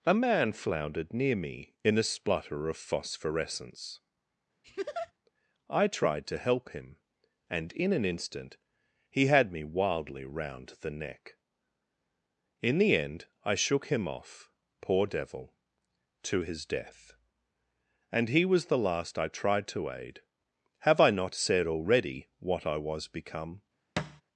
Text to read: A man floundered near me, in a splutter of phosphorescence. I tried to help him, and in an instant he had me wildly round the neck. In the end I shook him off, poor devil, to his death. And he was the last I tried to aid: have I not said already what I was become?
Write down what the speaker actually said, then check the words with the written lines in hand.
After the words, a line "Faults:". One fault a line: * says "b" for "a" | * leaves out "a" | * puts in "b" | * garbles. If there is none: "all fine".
A man floundered near me, in a splutter of phosphorescence. I tried to help him, and in an instant he had me wildly round the neck. In the end I shook him off, poor devil, to his death. And he was the last I tried to aid: have I not said already what I was become?
Faults:
all fine